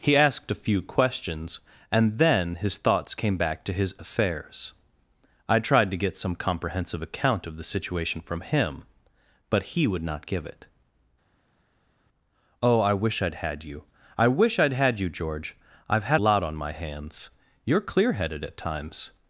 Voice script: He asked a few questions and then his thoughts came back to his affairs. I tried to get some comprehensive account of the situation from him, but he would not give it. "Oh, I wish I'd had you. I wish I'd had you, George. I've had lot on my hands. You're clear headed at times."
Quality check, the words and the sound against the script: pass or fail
pass